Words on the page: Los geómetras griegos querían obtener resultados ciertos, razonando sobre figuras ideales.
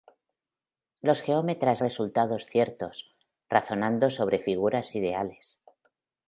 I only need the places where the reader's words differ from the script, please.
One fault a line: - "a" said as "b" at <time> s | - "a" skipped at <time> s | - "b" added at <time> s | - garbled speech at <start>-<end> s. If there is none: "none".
- "griegos querían obtener" skipped at 1.8 s